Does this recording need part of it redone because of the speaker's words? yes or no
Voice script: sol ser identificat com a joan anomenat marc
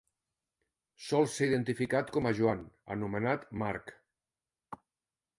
no